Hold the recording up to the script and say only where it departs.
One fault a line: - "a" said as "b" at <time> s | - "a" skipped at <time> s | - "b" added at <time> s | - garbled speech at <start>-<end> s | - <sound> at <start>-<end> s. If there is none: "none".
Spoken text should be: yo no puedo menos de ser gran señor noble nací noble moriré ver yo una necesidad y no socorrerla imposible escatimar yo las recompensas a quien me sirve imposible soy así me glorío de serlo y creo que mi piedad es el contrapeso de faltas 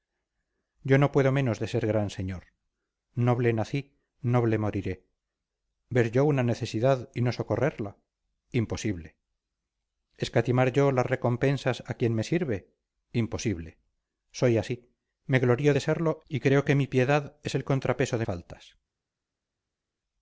none